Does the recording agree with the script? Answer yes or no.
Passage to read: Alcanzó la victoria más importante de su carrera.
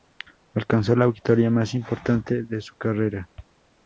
yes